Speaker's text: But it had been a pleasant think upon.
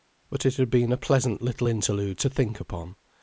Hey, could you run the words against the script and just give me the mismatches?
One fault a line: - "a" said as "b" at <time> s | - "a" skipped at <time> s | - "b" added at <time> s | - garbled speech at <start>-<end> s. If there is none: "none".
- "little interlude to" added at 1.4 s